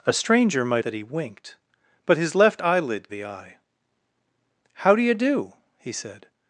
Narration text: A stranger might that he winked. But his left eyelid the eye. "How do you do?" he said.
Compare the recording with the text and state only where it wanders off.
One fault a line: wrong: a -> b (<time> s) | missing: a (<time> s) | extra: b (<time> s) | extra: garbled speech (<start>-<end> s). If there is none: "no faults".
no faults